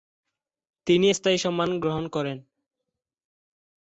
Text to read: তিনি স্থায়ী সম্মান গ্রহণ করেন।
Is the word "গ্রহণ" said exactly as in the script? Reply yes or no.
yes